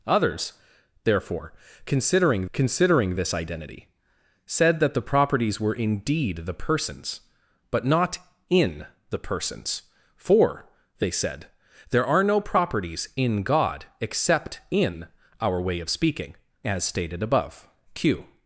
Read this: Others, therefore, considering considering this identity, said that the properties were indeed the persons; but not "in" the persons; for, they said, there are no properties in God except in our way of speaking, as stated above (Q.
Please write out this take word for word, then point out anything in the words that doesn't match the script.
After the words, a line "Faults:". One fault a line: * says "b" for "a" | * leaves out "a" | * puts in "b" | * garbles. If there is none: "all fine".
Others, therefore, considering considering this identity, said that the properties were indeed the persons; but not "in" the persons; for, they said, there are no properties in God except in our way of speaking, as stated above (Q.
Faults:
all fine